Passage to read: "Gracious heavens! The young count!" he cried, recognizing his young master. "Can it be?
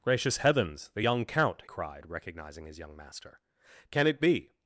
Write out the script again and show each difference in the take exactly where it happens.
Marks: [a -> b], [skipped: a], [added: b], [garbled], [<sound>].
"Gracious heavens! The young count!" [skipped: he] cried, recognizing his young master. "Can it be?